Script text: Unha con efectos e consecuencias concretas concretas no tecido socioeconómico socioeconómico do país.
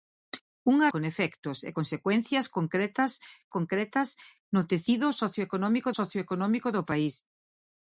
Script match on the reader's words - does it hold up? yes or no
yes